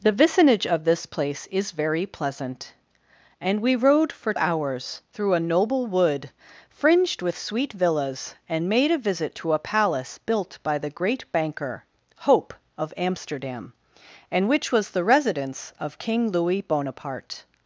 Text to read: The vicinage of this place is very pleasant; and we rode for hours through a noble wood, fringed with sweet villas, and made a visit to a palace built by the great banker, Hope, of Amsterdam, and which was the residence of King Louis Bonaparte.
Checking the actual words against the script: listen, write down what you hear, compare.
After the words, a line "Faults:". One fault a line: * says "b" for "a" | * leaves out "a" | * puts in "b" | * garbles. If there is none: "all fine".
The vicinage of this place is very pleasant; and we rode for hours through a noble wood, fringed with sweet villas, and made a visit to a palace built by the great banker, Hope, of Amsterdam, and which was the residence of King Louis Bonaparte.
Faults:
all fine